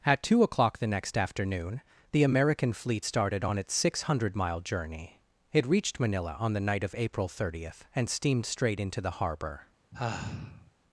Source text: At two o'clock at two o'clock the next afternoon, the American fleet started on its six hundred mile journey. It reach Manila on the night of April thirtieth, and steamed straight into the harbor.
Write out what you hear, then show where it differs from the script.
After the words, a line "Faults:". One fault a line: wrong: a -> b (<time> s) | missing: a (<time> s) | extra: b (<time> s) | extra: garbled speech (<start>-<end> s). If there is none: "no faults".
At two o'clock the next afternoon, the American fleet started on its six hundred mile journey. It reached Manila on the night of April thirtieth, and steamed straight into the harbor.
Faults:
missing: at two o'clock (0.8 s)
wrong: reach -> reached (5.7 s)